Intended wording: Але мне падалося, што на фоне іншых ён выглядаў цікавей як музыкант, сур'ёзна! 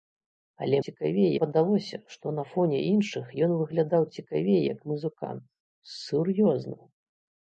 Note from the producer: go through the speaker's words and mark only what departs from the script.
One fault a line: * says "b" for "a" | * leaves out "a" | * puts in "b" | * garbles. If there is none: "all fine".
* says "цікавей" for "мне"